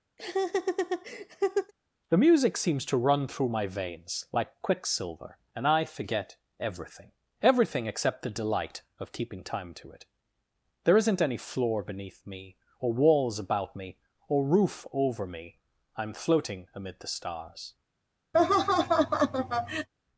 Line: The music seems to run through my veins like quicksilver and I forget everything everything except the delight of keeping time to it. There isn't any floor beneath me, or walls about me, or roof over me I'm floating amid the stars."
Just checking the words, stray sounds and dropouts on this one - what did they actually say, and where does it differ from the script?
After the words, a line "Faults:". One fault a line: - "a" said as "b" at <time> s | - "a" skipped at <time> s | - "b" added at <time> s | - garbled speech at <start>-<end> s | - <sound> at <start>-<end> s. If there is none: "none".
The music seems to run through my veins like quicksilver and I forget everything everything except the delight of keeping time to it. There isn't any floor beneath me, or walls about me, or roof over me I'm floating amid the stars."
Faults:
- laugh at 0.2-1.7 s
- laugh at 18.3-19.9 s